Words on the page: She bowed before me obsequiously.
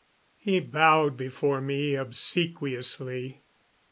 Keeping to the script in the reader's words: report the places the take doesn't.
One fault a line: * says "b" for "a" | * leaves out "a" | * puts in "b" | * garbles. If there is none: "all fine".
* says "He" for "She"